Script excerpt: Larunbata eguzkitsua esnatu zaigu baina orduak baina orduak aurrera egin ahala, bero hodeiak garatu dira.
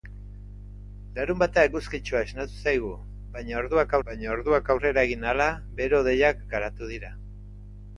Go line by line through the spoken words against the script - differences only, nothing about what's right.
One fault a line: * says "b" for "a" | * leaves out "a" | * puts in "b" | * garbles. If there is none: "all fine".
all fine